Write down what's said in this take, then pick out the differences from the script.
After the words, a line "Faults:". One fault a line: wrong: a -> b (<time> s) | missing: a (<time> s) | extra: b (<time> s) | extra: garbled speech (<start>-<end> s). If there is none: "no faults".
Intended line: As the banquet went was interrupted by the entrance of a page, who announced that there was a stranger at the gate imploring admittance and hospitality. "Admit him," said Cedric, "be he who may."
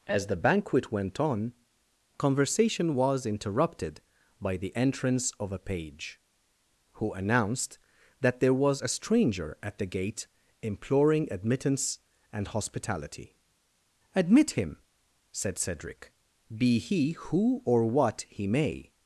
As the banquet went on, conversation was interrupted by the entrance of a page, who announced that there was a stranger at the gate imploring admittance and hospitality. "Admit him," said Cedric, "be he who or what he may."
Faults:
extra: on conversation (1.2 s)
extra: or what he (17.6 s)